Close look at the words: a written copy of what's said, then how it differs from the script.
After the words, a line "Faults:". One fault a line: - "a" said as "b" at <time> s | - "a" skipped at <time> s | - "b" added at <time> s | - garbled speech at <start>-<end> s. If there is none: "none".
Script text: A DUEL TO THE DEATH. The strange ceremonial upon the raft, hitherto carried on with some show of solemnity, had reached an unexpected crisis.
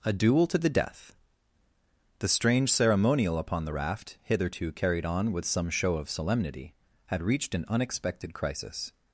A DUEL TO THE DEATH. The strange ceremonial upon the raft, hitherto carried on with some show of solemnity, had reached an unexpected crisis.
Faults:
none